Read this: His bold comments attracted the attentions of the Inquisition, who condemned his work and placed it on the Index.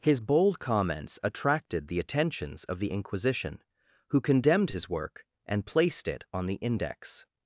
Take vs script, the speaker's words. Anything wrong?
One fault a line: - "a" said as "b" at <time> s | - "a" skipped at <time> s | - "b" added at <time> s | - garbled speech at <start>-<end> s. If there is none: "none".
none